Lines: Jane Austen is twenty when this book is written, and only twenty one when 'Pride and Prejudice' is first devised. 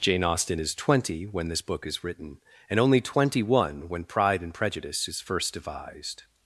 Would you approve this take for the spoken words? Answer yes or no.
yes